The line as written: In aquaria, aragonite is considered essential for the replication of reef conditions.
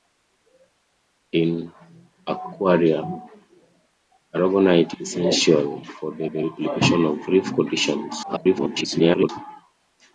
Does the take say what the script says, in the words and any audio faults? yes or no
no